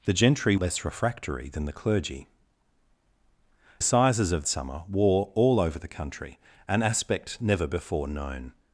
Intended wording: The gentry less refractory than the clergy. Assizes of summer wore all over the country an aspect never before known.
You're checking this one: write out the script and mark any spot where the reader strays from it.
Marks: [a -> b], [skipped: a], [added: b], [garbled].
The gentry less refractory than the clergy. Assizes of summer wore all over the country an aspect never before known.